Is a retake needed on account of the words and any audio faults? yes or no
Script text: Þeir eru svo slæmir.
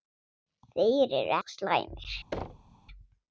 yes